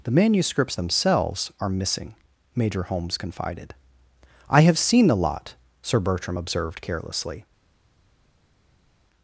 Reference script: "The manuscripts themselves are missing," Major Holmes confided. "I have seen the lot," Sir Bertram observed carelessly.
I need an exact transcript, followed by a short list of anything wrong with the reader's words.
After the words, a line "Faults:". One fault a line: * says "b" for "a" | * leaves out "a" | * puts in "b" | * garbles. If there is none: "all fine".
"The manuscripts themselves are missing," Major Holmes confided. "I have seen the lot," Sir Bertram observed carelessly.
Faults:
all fine